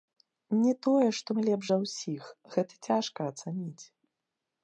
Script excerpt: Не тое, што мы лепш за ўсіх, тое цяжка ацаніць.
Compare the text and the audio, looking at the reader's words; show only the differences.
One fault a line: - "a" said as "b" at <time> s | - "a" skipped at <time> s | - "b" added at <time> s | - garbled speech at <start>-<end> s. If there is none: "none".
- "тое" said as "гэта" at 2.5 s